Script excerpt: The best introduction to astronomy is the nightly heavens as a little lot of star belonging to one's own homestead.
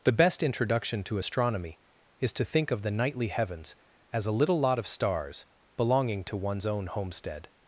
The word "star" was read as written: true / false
false